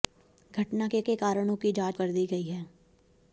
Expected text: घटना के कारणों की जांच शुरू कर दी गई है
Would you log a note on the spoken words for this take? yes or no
yes